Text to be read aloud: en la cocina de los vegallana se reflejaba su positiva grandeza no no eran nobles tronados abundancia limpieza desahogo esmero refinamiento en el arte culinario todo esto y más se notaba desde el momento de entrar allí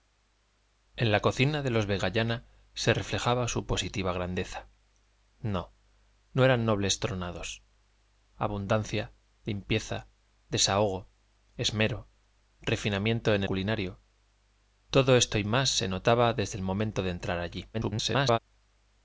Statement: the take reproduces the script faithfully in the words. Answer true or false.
false